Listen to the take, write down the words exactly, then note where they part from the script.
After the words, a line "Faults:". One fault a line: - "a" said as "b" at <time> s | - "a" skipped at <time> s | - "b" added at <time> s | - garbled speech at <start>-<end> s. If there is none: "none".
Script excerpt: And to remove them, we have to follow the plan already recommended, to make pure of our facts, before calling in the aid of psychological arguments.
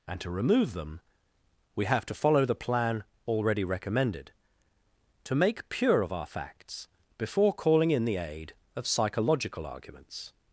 And to remove them, we have to follow the plan already recommended, to make pure of our facts, before calling in the aid of psychological arguments.
Faults:
none